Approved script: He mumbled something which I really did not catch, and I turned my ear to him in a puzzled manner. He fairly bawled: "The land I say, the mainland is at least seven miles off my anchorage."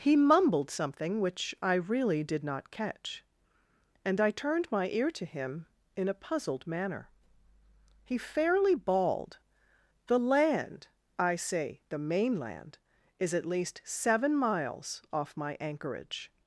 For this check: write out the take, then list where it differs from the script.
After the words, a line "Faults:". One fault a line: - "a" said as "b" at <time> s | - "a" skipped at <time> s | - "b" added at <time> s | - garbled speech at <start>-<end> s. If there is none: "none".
He mumbled something which I really did not catch, and I turned my ear to him in a puzzled manner. He fairly bawled: "The land I say, the mainland is at least seven miles off my anchorage."
Faults:
none